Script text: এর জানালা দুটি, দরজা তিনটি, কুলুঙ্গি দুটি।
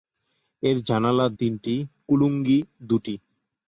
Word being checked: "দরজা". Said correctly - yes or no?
no